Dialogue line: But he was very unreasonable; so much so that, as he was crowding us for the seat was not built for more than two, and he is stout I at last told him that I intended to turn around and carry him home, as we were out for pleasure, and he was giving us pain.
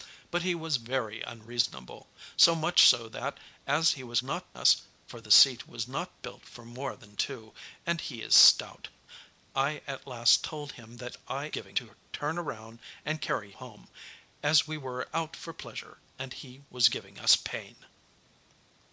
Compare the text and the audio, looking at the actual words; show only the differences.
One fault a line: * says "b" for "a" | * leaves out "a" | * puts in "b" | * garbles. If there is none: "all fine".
* says "not" for "crowding"
* says "giving" for "intended"
* leaves out "him"